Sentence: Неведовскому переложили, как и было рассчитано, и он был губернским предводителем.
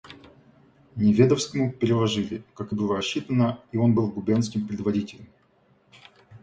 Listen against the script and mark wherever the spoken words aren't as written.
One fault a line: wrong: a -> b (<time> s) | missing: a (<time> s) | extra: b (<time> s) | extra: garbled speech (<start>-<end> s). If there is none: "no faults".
no faults